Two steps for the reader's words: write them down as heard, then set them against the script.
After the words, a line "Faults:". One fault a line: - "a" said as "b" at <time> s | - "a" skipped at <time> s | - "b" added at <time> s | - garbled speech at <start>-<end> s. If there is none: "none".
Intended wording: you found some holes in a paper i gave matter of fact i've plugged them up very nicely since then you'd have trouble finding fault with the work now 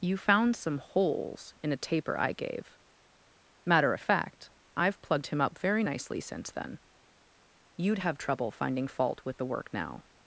you found some holes in a taper i gave matter of fact i've plugged him up very nicely since then you'd have trouble finding fault with the work now
Faults:
- "paper" said as "taper" at 1.8 s
- "them" said as "him" at 5.3 s